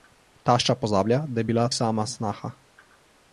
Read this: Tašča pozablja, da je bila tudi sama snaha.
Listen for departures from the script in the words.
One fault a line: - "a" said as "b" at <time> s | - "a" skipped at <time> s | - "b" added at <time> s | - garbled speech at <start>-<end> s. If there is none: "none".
- "tudi" skipped at 1.7 s